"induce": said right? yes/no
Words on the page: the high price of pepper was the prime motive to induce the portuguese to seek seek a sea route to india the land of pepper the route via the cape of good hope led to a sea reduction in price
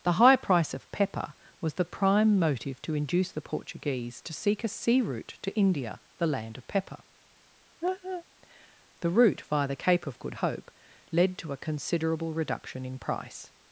yes